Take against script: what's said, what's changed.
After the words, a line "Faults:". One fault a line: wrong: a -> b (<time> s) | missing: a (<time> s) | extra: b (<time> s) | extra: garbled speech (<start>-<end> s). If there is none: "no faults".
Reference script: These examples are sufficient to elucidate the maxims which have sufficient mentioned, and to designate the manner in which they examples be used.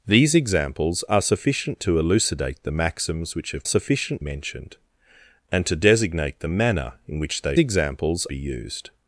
These examples are sufficient to elucidate the maxims which have sufficient mentioned, and to designate the manner in which they examples be used.
Faults:
no faults